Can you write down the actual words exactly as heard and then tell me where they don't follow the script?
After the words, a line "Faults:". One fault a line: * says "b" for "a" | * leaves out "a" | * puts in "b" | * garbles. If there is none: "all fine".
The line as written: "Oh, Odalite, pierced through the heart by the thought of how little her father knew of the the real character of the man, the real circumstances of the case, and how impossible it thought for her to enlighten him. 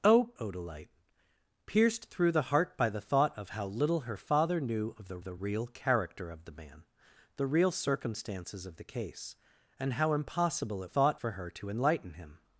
"Oh, Odalite, pierced through the heart by the thought of how little her father knew of the the real character of the man, the real circumstances of the case, and how impossible it thought for her to enlighten him.
Faults:
all fine